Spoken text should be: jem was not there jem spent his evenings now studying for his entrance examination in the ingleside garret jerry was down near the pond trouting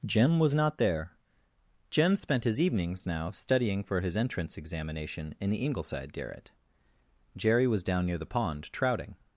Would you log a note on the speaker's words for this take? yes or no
no